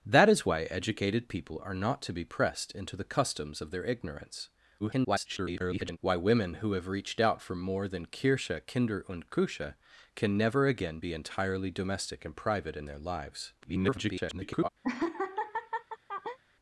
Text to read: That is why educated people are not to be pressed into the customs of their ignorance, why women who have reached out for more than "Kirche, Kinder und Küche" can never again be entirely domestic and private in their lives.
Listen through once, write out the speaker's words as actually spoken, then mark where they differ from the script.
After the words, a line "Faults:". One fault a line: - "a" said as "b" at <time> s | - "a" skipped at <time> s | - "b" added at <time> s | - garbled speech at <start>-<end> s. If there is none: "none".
That is why educated people are not to be pressed into the customs of their ignorance, [garbled] why women who have reached out for more than "Kirche, Kinder und Küche" can never again be entirely domestic and private in their lives. [garbled]
Faults:
- garbled speech at 4.8-6.0 s
- garbled speech at 13.6-14.7 s